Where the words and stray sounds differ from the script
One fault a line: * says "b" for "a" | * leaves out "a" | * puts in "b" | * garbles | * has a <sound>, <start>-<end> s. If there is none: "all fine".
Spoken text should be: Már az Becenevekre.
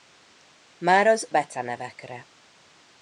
all fine